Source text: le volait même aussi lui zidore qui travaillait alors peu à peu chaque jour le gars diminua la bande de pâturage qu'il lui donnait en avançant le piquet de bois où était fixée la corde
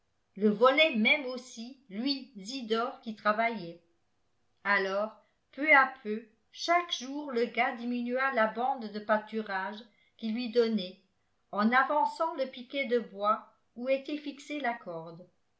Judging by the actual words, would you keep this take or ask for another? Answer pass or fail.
pass